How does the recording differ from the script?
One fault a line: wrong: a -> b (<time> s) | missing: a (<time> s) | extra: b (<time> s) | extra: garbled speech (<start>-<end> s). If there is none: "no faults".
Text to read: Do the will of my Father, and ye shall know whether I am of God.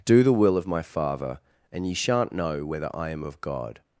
wrong: shall -> shan't (1.9 s)